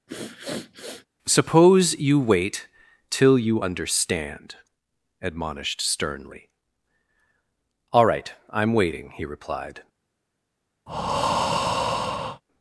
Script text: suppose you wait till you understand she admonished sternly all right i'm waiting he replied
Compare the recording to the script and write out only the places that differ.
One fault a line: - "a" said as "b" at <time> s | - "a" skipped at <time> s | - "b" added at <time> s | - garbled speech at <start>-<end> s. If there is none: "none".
- "she" skipped at 4.6 s